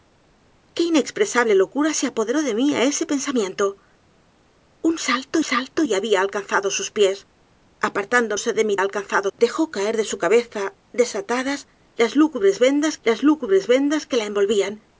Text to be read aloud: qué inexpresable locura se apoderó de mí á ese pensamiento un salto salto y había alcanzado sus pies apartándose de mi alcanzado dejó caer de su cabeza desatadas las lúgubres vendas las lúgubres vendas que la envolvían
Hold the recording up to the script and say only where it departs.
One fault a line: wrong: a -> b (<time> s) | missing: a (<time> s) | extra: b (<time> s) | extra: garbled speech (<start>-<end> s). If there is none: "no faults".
no faults